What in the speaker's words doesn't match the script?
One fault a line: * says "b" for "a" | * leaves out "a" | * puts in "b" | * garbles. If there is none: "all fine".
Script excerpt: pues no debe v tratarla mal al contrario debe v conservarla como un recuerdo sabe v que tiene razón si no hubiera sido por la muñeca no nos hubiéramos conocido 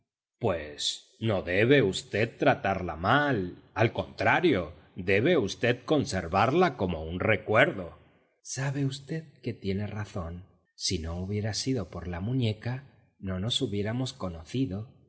all fine